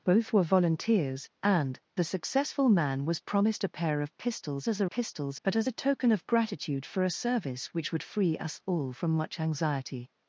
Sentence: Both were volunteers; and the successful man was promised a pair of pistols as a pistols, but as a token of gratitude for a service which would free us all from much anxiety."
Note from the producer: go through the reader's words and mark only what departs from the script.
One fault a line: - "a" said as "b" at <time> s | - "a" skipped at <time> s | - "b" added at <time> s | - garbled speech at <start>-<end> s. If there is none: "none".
none